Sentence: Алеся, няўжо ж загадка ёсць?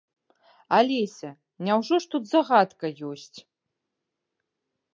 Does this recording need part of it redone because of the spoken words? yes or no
yes